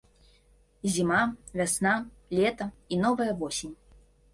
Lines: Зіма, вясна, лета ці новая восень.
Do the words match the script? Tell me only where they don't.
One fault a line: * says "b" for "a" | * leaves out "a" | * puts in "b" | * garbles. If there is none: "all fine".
* says "і" for "ці"